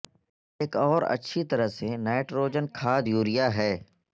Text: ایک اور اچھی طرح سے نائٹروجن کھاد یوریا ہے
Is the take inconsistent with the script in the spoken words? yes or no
no